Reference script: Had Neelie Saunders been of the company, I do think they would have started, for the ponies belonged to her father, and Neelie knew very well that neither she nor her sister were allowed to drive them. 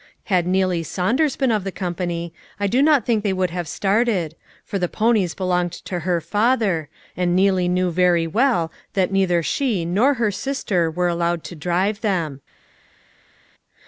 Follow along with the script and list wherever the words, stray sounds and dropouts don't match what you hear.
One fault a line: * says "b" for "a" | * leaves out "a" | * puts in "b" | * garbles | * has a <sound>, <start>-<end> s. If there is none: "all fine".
* puts in "not"